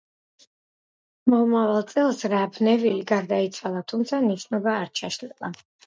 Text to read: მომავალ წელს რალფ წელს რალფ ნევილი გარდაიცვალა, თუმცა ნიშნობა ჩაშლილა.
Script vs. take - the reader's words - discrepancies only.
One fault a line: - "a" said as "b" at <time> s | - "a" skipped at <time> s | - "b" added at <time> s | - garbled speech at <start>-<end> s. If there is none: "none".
- "წელს რალფ" skipped at 2.6 s
- "არ" added at 4.8 s